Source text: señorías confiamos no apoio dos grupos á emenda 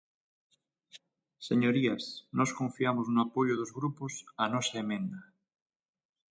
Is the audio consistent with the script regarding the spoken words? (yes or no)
no